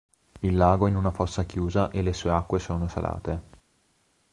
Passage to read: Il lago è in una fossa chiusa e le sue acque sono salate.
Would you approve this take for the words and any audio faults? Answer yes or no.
yes